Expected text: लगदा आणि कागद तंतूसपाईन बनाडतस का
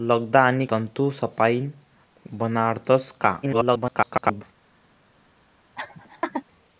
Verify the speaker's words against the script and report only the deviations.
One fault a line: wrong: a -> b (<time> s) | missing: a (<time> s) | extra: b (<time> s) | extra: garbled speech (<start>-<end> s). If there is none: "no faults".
missing: कागद (0.7 s)
extra: garbled speech (3.4-4.4 s)